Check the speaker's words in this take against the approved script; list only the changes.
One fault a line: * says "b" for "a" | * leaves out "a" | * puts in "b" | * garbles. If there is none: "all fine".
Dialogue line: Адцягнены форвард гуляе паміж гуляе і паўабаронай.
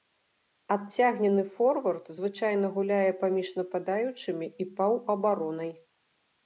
* puts in "звычайна"
* says "нападаючымі" for "гуляе"